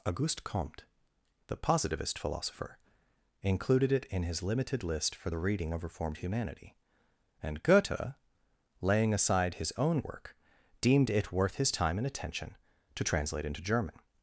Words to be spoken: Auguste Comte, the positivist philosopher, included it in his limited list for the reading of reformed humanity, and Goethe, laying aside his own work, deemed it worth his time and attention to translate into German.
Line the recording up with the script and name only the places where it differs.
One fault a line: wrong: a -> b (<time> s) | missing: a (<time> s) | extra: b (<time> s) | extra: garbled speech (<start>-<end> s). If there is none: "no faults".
no faults